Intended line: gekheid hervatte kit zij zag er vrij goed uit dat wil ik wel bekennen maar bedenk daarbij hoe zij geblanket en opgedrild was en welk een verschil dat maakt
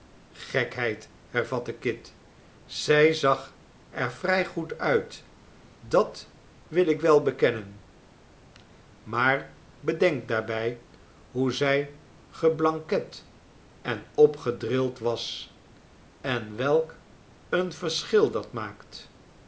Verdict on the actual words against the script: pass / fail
pass